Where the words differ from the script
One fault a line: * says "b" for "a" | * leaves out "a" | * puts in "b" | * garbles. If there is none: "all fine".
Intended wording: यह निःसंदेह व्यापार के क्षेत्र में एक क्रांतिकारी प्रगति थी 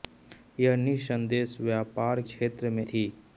* leaves out "के"
* leaves out "एक क्रांतिकारी प्रगति"